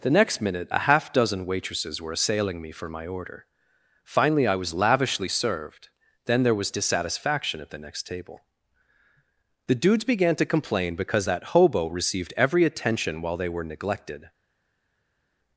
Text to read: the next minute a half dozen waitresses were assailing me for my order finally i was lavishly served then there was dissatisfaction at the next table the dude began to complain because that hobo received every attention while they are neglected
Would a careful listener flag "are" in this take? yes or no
yes